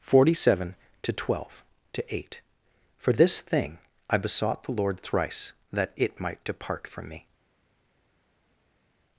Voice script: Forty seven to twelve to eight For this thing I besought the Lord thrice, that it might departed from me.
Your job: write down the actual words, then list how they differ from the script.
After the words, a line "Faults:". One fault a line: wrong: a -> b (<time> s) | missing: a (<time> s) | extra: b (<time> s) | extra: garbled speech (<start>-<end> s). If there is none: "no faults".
Forty seven to twelve to eight For this thing I besought the Lord thrice, that it might depart from me.
Faults:
wrong: departed -> depart (6.4 s)